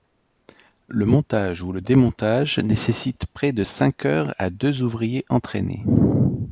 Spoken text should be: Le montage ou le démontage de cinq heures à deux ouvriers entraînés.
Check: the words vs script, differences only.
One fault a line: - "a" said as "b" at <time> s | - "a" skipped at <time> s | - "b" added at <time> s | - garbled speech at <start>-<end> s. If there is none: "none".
- "nécessite près" added at 2.6 s